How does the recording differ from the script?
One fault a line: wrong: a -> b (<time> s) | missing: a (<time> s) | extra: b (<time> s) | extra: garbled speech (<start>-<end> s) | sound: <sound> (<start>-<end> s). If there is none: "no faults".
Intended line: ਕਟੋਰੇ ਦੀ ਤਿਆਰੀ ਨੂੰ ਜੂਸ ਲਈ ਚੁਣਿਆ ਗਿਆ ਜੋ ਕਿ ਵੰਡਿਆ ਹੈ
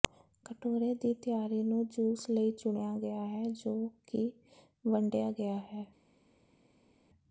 extra: ਹੈ (3.3 s)
extra: ਗਿਆ (5.3 s)